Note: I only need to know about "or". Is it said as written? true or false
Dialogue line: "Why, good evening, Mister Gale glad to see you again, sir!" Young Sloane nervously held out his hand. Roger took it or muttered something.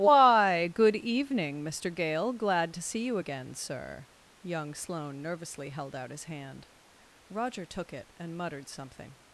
false